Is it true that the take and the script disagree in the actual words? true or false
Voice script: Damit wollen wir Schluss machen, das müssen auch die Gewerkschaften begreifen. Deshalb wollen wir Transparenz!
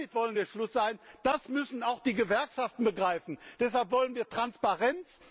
false